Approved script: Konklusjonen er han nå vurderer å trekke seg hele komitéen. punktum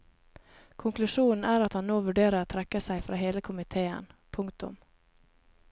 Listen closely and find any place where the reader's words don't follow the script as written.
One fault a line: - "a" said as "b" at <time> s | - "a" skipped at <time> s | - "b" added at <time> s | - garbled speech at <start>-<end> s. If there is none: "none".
- "at" added at 1.6 s
- "fra" added at 3.1 s